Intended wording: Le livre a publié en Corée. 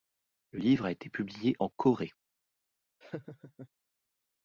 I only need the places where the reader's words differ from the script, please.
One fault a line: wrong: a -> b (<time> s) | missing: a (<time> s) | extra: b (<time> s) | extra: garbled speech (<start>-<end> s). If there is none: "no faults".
extra: été (0.9 s)